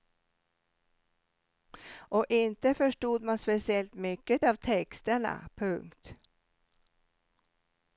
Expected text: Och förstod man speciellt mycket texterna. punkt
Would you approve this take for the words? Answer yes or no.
no